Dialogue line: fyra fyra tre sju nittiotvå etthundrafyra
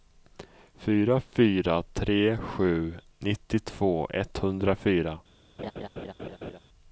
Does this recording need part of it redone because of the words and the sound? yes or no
yes